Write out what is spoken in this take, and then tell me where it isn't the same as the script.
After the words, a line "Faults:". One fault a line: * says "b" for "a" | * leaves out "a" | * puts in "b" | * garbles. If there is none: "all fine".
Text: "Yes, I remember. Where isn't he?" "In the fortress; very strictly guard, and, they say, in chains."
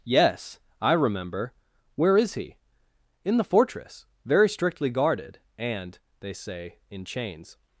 "Yes, I remember. Where is he?" "In the fortress; very strictly guarded, and, they say, in chains."
Faults:
* says "is" for "isn't"
* says "guarded" for "guard"